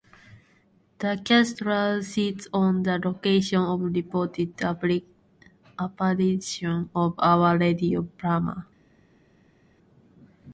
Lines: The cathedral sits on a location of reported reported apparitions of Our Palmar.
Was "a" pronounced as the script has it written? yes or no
no